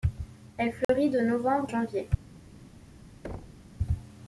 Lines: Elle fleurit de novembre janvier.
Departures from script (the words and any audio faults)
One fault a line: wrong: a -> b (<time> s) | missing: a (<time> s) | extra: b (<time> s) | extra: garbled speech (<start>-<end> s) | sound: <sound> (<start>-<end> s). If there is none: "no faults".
sound: dropout (0.8-0.9 s)
sound: thud (3.2-3.7 s)